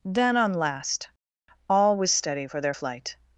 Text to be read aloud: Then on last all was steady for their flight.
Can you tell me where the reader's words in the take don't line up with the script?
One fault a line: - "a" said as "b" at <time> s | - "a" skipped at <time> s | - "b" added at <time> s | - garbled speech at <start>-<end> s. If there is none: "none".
none